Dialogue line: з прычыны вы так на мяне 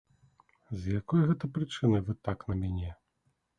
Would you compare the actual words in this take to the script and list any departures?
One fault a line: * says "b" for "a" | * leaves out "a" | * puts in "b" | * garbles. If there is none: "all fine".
* puts in "якой гэта"